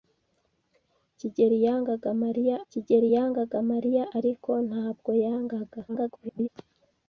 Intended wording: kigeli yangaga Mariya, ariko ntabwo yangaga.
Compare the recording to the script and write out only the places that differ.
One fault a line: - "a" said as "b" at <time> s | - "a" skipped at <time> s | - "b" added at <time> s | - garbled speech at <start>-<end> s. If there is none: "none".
- "kigeli yangaga Mariya" added at 2.7 s
- garbled speech at 5.9-6.5 s